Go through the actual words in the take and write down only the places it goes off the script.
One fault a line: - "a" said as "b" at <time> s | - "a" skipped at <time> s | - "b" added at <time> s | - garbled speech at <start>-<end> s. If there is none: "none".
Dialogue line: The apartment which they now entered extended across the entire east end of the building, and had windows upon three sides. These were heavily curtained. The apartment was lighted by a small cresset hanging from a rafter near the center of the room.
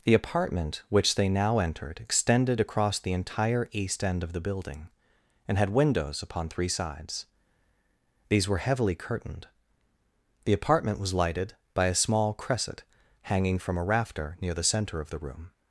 none